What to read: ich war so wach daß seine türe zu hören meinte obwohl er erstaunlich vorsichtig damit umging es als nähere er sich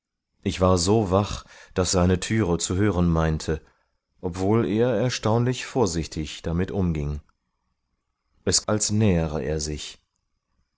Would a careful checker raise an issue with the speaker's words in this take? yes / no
no